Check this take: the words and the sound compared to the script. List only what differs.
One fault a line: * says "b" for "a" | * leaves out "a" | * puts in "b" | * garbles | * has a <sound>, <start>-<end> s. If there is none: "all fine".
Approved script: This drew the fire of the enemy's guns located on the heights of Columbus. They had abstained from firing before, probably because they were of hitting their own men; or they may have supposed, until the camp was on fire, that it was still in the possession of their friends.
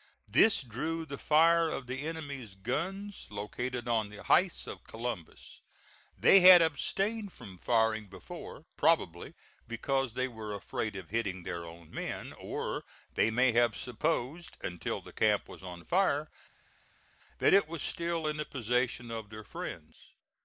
* puts in "afraid"